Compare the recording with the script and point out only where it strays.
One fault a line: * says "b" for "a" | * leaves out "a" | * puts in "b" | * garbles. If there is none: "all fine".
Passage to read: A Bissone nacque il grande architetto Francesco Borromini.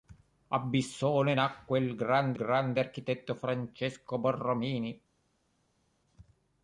* puts in "grande"